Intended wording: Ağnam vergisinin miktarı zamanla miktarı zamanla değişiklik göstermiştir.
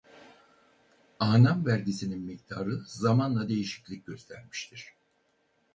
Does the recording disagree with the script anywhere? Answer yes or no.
yes